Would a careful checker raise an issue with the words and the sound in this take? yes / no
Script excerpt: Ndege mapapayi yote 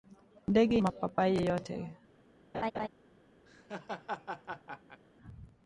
yes